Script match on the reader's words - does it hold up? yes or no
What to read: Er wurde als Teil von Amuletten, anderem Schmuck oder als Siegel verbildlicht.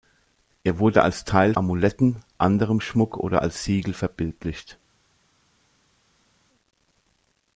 no